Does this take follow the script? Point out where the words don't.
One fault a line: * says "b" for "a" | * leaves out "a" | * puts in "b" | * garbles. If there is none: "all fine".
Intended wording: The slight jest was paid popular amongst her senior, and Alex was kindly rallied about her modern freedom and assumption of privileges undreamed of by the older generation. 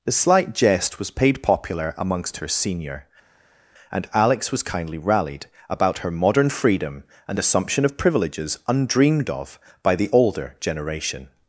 all fine